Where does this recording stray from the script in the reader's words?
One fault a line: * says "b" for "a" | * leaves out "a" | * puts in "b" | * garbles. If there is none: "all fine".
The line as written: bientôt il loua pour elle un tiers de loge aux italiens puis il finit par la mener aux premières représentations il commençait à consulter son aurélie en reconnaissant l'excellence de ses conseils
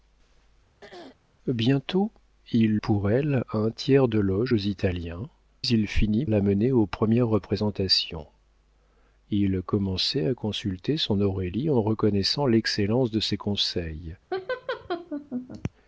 * leaves out "loua"
* leaves out "puis"
* leaves out "par"